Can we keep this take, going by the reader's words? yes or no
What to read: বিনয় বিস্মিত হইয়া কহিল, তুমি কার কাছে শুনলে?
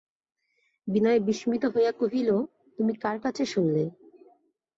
yes